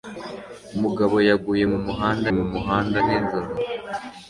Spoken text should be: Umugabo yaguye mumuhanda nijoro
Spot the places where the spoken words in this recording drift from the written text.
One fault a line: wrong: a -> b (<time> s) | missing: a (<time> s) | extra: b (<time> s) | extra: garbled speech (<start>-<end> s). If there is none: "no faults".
extra: mumuhanda (2.4 s)